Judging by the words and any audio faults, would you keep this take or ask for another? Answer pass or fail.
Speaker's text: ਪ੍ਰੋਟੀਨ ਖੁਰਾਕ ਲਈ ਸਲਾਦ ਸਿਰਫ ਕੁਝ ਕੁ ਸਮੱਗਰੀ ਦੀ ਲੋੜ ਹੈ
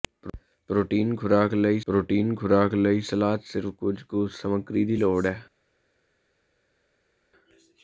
fail